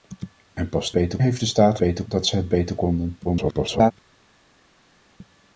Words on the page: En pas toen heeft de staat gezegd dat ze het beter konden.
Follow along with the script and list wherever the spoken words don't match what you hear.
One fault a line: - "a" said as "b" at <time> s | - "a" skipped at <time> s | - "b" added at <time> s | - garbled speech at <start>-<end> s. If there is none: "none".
- "toen" said as "beter" at 0.9 s
- "gezegd" said as "beter" at 1.8 s
- garbled speech at 3.2-3.9 s